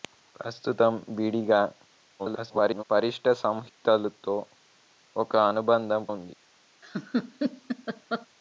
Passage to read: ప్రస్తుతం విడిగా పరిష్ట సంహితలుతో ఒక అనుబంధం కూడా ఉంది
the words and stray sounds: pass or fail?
fail